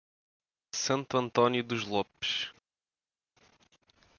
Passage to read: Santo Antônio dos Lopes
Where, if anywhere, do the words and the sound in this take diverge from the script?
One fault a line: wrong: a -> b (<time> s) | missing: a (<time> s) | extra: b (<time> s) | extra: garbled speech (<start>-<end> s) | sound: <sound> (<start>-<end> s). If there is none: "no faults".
no faults